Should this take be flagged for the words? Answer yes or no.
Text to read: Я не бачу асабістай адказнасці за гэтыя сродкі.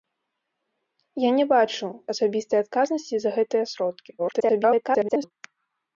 yes